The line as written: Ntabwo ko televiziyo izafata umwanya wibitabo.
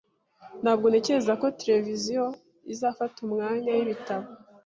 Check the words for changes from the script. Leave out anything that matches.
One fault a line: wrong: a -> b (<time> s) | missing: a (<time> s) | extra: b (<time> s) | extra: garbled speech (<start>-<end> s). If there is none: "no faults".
extra: ntekereza (0.9 s)